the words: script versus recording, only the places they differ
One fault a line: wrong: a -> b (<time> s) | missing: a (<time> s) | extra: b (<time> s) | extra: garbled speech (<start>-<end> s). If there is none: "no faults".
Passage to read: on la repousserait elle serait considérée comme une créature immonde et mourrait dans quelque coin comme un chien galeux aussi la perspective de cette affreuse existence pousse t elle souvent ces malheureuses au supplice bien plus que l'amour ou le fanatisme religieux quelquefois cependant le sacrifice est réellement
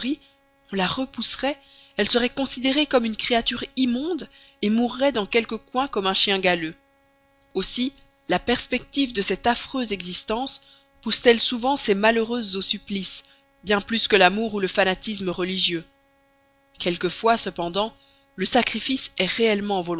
no faults